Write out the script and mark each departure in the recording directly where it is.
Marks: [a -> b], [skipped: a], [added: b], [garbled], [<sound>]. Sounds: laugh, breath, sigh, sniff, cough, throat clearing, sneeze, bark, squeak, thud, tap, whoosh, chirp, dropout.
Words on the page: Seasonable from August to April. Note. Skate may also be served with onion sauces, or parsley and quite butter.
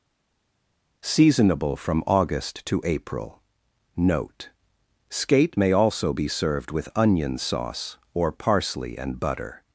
Seasonable from August to April. Note. Skate may also be served with onion [sauces, -> sauce] or parsley and [skipped: quite] butter.